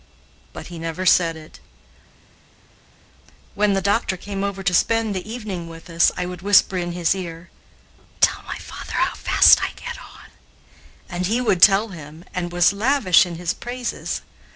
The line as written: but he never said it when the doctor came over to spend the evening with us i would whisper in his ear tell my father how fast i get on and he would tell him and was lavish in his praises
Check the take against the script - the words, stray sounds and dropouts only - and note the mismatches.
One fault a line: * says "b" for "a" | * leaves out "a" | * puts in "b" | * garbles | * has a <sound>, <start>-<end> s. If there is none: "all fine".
all fine